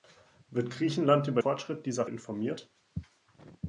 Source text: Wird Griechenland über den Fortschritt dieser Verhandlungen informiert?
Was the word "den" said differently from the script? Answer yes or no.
yes